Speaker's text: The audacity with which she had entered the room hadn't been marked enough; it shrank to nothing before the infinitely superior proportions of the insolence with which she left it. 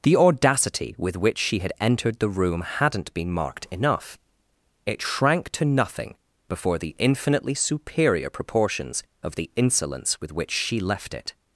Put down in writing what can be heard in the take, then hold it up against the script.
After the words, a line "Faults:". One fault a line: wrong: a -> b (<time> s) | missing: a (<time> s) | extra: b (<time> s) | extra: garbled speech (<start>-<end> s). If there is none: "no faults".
The audacity with which she had entered the room hadn't been marked enough; it shrank to nothing before the infinitely superior proportions of the insolence with which she left it.
Faults:
no faults